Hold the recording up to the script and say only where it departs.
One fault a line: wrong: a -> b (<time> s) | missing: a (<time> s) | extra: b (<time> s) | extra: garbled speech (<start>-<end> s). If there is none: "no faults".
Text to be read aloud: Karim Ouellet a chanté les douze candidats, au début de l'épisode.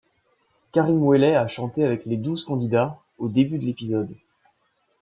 extra: avec (1.8 s)